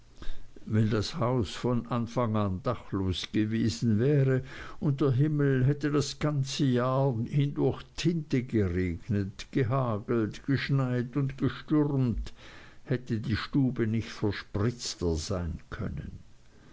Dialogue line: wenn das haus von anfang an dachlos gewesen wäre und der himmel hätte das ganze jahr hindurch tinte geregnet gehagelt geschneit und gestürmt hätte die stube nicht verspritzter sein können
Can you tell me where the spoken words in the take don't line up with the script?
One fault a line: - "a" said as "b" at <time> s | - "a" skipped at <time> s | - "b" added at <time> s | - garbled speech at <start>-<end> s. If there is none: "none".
none